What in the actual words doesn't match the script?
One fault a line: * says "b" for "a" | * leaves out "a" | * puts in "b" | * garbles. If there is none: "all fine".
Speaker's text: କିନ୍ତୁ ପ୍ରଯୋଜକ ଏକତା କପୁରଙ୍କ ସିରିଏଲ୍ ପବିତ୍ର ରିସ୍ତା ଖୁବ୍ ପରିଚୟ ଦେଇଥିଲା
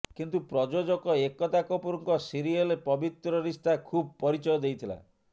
all fine